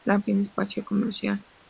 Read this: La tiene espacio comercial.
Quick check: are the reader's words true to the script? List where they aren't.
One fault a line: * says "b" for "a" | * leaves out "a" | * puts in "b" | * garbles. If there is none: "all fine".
all fine